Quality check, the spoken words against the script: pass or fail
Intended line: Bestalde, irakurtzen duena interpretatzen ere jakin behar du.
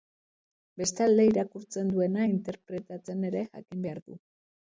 pass